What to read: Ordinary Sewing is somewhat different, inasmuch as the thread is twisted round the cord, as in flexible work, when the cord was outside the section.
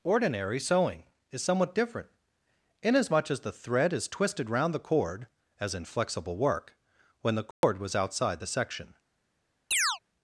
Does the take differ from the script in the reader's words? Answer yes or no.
no